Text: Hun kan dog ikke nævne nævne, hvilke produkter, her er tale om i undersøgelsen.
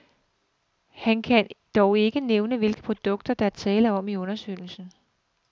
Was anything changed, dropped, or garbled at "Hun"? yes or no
yes